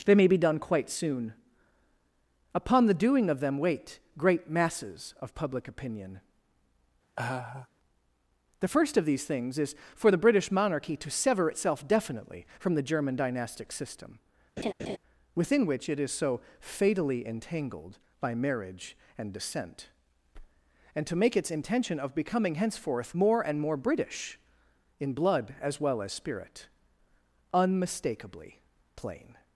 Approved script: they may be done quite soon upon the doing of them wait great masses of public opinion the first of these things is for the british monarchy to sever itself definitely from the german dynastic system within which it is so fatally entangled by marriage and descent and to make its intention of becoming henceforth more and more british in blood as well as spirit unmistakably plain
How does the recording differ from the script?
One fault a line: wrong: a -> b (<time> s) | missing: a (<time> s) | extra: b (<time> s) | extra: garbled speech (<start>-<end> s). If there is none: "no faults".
no faults